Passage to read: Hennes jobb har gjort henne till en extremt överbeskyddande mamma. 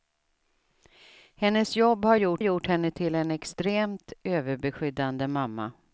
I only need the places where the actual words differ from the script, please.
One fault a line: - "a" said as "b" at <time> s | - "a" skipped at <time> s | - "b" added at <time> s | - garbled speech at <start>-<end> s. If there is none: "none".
- "gjort" added at 2.4 s